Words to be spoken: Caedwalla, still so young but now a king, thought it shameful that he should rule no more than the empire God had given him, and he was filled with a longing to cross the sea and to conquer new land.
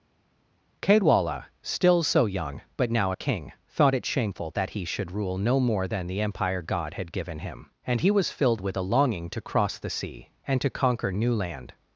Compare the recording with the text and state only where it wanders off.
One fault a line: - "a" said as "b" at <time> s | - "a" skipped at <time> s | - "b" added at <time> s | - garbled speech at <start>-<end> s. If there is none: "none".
none